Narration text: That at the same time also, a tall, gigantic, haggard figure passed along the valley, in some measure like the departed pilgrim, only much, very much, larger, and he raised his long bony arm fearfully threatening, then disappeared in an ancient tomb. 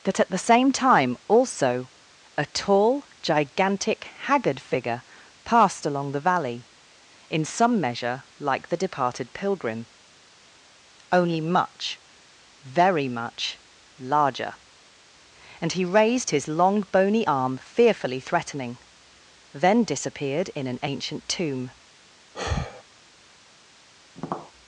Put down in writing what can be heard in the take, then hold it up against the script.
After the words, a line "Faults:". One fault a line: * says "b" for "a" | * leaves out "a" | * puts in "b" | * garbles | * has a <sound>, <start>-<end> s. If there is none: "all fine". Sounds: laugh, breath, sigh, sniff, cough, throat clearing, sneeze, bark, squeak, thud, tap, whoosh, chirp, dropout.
That at the same time also, a tall, gigantic, haggard figure passed along the valley, in some measure like the departed pilgrim, only much, very much, larger, and he raised his long bony arm fearfully threatening, then disappeared in an ancient tomb.
Faults:
* has a sigh, 22.3-22.8 s
* has a tap, 24.2-24.5 s